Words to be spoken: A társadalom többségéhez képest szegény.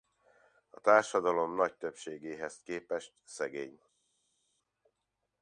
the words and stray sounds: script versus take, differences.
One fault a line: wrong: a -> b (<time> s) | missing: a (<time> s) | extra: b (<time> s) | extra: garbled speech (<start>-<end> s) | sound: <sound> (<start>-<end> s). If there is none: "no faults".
extra: nagy (1.6 s)